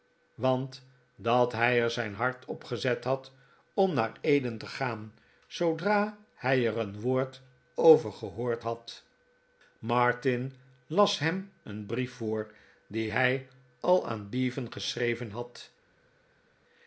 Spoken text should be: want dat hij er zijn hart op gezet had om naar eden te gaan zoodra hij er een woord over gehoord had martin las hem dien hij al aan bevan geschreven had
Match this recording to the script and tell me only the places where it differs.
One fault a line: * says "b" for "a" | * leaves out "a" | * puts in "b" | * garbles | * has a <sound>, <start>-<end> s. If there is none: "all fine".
* puts in "een brief voor"